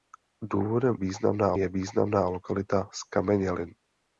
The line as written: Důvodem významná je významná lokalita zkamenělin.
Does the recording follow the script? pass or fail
pass